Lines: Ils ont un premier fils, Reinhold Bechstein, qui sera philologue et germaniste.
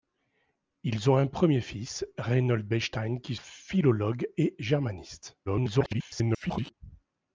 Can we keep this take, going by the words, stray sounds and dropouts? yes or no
no